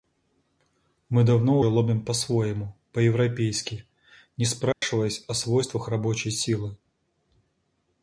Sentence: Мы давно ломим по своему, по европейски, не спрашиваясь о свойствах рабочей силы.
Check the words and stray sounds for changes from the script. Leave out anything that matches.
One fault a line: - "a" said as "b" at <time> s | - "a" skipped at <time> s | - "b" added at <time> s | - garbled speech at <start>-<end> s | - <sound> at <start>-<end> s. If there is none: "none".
- dropout at 4.7-4.8 s